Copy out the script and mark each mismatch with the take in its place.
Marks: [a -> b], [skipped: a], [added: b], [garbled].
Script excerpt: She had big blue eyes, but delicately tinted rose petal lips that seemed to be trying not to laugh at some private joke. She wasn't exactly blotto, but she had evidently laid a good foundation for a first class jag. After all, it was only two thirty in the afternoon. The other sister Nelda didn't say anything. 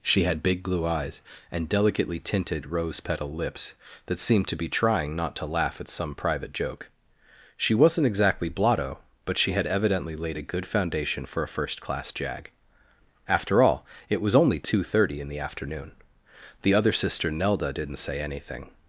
She had big blue eyes, [but -> and] delicately tinted rose petal lips that seemed to be trying not to laugh at some private joke. She wasn't exactly blotto, but she had evidently laid a good foundation for a first class jag. After all, it was only two thirty in the afternoon. The other sister Nelda didn't say anything.